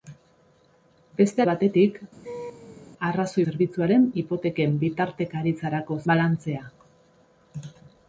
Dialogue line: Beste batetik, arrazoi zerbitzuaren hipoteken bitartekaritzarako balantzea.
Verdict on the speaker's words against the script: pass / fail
pass